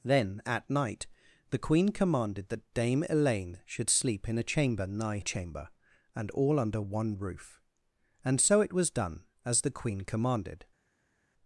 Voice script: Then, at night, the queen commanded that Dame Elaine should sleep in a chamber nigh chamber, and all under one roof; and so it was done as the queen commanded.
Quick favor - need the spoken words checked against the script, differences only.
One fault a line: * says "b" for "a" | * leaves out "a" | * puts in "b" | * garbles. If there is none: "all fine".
all fine